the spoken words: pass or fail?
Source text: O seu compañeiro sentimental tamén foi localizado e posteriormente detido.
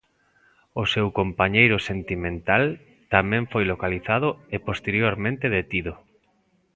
pass